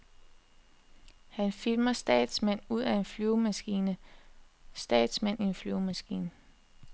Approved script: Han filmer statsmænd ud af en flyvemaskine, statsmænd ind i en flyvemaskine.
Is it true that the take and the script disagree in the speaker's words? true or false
true